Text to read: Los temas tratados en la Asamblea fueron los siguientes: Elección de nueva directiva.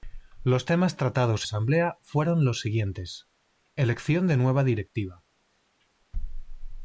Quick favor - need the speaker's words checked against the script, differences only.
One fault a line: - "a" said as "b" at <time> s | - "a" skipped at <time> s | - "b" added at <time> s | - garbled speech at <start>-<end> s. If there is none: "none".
- "en la" skipped at 1.4 s